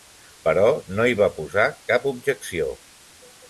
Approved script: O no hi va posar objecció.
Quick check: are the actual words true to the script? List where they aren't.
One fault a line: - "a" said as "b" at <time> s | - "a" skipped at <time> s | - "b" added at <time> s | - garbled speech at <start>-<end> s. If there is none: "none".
- "O" said as "Però" at 0.5 s
- "cap" added at 1.9 s